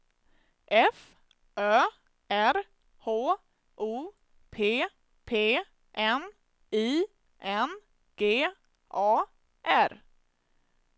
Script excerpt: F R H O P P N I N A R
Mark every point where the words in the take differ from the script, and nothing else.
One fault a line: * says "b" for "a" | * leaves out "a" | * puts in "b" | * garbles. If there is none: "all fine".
* puts in "Ö"
* puts in "G"